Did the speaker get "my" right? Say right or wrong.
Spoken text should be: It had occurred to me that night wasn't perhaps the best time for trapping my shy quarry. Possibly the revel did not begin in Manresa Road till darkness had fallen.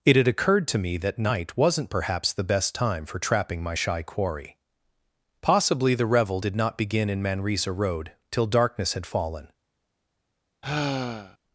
right